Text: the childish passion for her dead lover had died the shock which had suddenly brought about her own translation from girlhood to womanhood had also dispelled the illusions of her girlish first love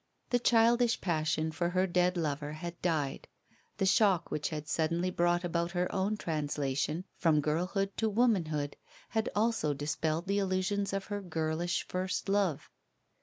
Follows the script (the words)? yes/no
yes